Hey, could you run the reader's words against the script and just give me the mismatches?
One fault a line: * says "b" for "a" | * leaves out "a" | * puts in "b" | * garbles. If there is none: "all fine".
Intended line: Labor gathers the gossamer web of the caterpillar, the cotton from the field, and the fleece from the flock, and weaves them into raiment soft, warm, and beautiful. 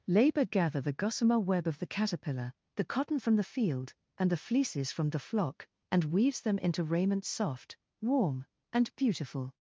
* says "gather" for "gathers"
* says "fleeces" for "fleece"